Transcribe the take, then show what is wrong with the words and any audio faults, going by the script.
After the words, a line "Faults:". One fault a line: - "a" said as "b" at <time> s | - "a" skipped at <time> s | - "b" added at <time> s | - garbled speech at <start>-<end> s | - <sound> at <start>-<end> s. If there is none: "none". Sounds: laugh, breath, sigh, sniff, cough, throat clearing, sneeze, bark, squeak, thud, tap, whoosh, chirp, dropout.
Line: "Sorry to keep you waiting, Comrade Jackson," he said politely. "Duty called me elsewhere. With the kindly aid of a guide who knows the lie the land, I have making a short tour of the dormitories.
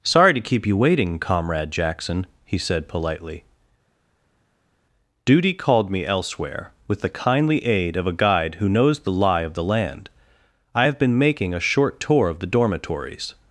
"Sorry to keep you waiting, Comrade Jackson," he said politely. "Duty called me elsewhere. With the kindly aid of a guide who knows the lie of the land, I have been making a short tour of the dormitories.
Faults:
- "of" added at 9.4 s
- "been" added at 11.0 s